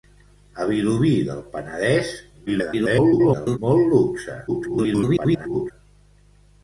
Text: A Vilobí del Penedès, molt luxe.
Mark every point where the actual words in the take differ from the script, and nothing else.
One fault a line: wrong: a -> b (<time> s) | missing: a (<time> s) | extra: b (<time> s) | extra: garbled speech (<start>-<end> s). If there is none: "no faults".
extra: garbled speech (2.5-3.6 s)
extra: garbled speech (4.5-5.7 s)